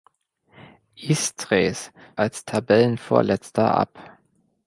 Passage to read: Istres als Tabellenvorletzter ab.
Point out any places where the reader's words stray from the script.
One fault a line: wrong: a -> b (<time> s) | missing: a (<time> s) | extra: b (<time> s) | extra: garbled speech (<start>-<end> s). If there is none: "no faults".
no faults